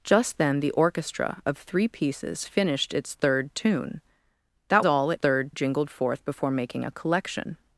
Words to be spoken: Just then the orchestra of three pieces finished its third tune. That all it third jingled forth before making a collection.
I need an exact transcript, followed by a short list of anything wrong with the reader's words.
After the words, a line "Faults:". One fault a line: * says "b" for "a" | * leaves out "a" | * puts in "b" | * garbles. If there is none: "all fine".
Just then the orchestra of three pieces finished its third tune. That all it third jingled forth before making a collection.
Faults:
all fine